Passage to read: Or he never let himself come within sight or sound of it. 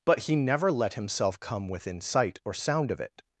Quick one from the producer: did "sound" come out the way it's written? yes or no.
yes